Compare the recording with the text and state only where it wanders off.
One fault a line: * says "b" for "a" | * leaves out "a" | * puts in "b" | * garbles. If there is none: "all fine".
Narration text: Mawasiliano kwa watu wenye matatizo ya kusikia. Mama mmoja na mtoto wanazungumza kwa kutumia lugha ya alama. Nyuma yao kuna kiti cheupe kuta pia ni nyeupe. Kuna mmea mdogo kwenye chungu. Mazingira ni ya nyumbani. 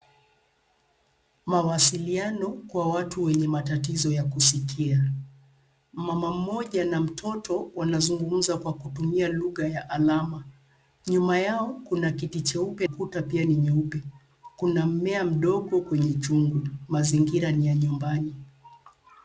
all fine